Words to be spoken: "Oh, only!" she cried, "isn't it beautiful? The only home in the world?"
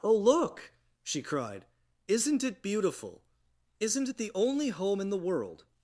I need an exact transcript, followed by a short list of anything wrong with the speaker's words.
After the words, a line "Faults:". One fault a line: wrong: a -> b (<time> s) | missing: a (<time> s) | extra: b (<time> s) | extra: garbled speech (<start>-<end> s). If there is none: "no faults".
"Oh, look!" she cried, "isn't it beautiful? Isn't it the only home in the world?"
Faults:
wrong: only -> look (0.1 s)
extra: Isn't it (3.8 s)